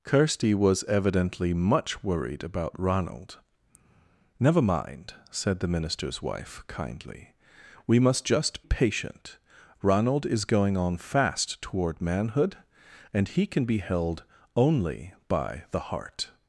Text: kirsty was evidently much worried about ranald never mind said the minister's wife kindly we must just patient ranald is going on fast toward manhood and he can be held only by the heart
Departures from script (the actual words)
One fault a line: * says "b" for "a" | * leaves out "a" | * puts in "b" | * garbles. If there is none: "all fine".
all fine